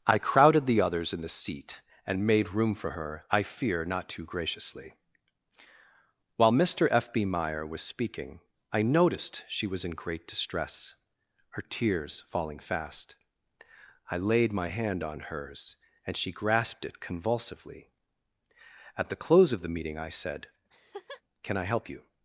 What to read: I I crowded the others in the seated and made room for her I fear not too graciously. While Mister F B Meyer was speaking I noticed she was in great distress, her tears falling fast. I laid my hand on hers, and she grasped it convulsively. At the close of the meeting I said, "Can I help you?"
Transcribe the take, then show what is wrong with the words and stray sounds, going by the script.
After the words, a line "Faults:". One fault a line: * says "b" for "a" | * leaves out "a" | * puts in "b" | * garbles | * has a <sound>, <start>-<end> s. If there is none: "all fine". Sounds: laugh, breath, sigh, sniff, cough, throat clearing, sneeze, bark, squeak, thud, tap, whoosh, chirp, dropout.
I crowded the others in the seat and made room for her I fear not too graciously. While Mister F B Meyer was speaking I noticed she was in great distress, her tears falling fast. I laid my hand on hers, and she grasped it convulsively. At the close of the meeting I said, "Can I help you?"
Faults:
* leaves out "I"
* says "seat" for "seated"
* has a laugh, 20.7-21.2 s